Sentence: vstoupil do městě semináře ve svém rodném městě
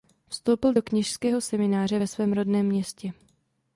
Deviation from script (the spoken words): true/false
true